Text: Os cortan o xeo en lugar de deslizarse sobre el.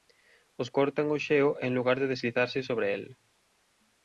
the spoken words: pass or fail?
pass